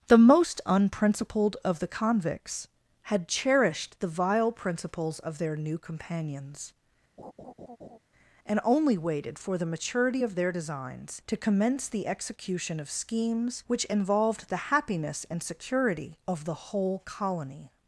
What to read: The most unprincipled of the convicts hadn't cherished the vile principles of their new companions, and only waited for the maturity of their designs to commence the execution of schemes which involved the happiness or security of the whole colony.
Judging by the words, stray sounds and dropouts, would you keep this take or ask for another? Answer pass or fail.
fail